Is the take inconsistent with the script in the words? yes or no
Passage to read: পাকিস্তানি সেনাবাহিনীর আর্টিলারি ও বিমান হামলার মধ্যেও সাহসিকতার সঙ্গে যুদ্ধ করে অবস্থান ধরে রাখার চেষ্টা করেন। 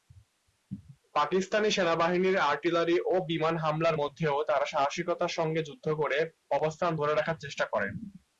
yes